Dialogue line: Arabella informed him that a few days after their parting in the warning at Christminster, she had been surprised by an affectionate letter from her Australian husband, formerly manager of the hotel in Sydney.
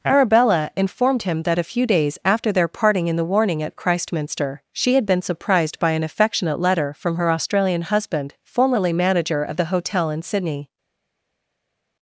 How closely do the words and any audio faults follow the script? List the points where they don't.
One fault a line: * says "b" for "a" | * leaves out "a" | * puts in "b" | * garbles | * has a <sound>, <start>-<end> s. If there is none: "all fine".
all fine